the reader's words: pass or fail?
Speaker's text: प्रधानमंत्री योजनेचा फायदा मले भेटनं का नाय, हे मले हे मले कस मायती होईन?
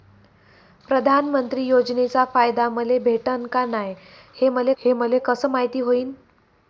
pass